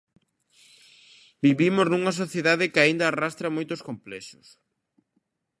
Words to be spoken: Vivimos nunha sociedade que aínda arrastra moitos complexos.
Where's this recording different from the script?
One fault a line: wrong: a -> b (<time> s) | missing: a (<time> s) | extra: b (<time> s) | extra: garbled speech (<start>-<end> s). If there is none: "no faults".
no faults